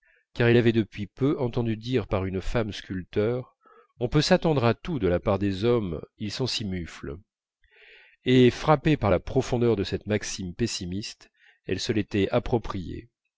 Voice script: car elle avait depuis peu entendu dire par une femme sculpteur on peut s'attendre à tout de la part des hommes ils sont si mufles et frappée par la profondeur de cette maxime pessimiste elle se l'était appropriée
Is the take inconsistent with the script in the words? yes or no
no